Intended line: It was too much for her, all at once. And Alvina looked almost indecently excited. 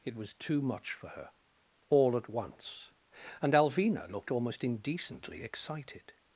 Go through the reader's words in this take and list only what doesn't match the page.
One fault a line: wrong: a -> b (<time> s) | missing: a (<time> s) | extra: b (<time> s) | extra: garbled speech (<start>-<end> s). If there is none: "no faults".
no faults